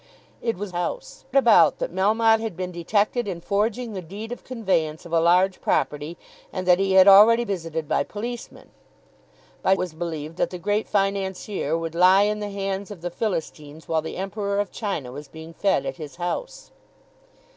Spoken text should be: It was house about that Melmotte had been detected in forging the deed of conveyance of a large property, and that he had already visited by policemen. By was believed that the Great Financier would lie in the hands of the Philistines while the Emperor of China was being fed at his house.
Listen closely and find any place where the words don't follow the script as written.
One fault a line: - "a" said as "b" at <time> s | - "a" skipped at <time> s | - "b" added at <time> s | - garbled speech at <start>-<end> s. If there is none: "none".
none